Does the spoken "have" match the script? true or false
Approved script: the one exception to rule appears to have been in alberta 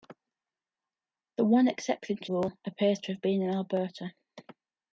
true